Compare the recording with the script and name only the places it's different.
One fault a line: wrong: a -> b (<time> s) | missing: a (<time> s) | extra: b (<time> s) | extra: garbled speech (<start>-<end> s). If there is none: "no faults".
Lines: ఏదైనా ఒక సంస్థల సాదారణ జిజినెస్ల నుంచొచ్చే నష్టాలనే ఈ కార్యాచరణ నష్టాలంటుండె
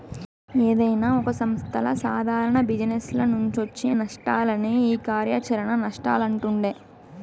no faults